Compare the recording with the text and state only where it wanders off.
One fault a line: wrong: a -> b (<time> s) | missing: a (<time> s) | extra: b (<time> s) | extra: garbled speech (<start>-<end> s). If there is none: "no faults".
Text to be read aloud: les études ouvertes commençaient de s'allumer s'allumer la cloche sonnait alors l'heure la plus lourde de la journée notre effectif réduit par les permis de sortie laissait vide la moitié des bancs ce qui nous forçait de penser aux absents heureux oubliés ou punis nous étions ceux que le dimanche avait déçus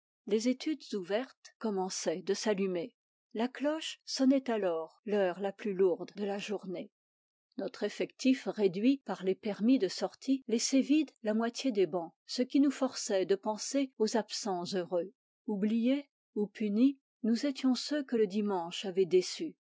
missing: s'allumer (3.0 s)